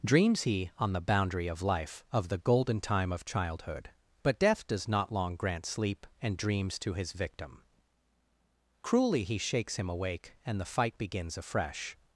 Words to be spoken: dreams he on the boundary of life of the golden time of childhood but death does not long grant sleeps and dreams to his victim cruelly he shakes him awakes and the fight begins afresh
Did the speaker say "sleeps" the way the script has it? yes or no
no